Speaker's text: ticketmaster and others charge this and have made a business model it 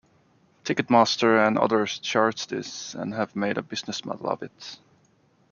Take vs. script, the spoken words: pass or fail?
fail